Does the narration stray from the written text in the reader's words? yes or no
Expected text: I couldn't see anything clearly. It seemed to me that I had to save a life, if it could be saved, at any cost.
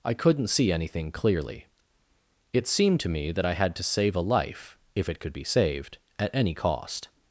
no